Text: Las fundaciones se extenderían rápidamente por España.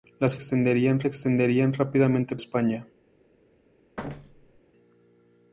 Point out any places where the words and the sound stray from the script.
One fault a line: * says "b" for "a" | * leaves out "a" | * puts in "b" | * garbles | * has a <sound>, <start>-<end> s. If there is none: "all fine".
* says "extenderían" for "fundaciones"
* leaves out "por"
* has a thud, 4.0-4.6 s